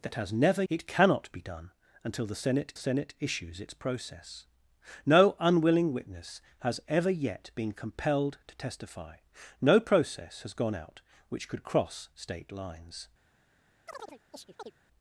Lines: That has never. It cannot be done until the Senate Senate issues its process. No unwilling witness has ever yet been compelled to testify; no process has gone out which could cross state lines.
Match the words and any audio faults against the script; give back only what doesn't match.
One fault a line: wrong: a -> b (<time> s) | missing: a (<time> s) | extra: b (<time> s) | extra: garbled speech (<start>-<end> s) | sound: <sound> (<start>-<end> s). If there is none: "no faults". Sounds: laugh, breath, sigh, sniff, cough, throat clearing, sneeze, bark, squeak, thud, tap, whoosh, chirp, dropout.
sound: chirp (13.9-14.7 s)